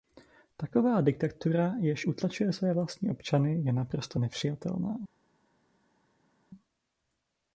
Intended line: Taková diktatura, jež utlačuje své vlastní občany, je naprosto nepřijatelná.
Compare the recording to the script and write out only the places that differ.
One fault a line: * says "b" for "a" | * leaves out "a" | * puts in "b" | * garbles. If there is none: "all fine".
all fine